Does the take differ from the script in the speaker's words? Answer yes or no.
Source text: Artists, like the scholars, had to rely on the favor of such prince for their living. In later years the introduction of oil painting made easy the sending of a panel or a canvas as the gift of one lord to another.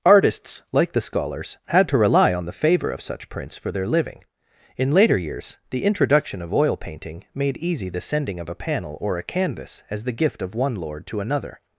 no